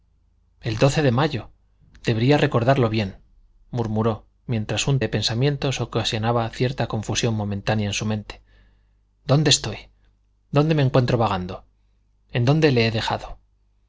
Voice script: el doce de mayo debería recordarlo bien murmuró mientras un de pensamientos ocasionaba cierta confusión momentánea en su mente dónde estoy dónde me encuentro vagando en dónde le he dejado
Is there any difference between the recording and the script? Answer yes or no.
no